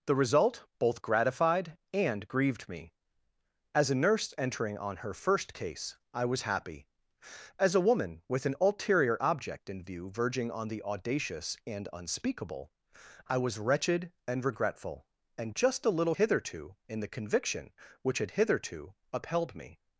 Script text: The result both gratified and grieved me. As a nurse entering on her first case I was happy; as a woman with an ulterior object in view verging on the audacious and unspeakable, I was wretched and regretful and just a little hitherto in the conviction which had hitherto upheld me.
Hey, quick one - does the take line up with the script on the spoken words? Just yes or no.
yes